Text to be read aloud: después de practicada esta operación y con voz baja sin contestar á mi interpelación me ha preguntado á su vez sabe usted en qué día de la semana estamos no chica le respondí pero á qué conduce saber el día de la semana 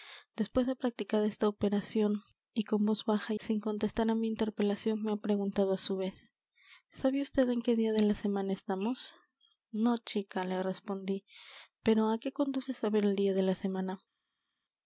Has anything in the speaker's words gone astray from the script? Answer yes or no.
no